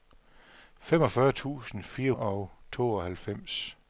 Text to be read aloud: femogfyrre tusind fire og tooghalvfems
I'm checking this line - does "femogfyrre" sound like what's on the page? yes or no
yes